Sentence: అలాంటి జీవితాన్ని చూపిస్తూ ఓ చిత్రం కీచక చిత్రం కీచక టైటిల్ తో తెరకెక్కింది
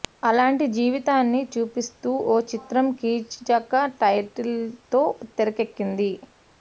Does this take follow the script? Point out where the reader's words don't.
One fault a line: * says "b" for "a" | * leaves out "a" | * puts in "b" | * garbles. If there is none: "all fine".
* leaves out "చిత్రం కీచక"